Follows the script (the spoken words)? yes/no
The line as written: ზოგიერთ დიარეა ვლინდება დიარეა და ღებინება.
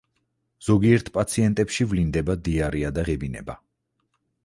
no